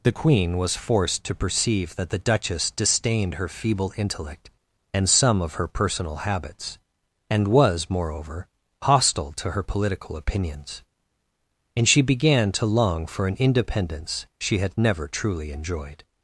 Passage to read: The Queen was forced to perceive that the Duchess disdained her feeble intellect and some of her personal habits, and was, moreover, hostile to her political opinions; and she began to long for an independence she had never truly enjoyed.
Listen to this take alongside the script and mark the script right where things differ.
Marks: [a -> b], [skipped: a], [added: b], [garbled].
The Queen was forced to perceive that the Duchess disdained her feeble intellect and some of her personal habits, and was, moreover, hostile to her political opinions; and she began to long for an independence she had never truly enjoyed.